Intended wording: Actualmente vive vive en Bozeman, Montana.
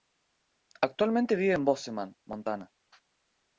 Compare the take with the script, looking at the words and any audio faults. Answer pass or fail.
fail